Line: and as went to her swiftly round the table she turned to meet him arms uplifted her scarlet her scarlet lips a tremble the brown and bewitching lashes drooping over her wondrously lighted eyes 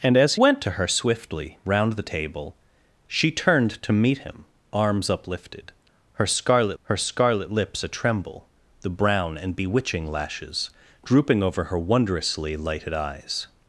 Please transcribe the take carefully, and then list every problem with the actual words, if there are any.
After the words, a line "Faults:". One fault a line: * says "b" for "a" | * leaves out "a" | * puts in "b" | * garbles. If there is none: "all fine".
and as went to her swiftly round the table she turned to meet him arms uplifted her scarlet her scarlet lips a tremble the brown and bewitching lashes drooping over her wondrously lighted eyes
Faults:
all fine